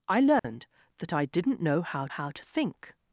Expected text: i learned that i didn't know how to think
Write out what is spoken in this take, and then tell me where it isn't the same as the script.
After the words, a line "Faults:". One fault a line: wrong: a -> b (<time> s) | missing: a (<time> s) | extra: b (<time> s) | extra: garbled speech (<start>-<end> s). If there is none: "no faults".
i learned that i didn't know how how to think
Faults:
extra: how (2.1 s)